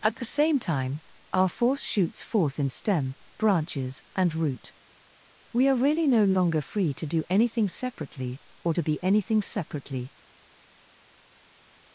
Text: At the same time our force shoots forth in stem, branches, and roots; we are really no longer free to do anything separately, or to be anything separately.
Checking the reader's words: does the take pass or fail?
fail